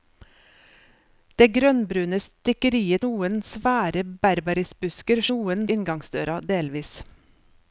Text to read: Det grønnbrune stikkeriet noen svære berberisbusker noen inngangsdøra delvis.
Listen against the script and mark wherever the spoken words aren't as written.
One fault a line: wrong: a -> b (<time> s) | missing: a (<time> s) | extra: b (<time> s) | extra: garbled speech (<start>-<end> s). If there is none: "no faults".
no faults